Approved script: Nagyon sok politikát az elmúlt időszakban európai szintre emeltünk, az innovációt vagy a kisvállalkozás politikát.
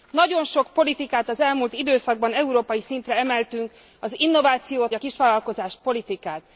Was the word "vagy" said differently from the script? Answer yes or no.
yes